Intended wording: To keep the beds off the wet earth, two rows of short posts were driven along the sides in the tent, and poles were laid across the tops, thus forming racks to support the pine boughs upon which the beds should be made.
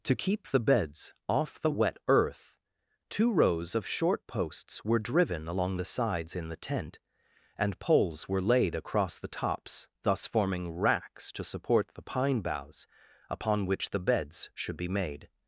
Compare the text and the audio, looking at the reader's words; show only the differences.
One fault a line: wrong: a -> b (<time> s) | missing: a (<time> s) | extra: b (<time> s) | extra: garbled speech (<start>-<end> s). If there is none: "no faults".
no faults